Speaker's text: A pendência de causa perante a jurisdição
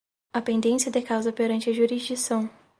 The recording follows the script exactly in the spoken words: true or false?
true